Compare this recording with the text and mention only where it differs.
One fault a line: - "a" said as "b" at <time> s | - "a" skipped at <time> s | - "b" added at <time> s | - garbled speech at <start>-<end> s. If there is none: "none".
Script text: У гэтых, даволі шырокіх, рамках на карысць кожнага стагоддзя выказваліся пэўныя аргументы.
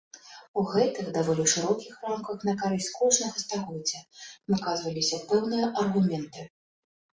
none